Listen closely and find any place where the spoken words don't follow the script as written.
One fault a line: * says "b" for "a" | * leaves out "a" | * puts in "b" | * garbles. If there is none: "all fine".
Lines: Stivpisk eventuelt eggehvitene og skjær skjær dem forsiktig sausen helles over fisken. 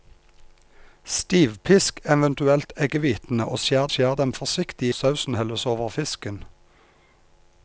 all fine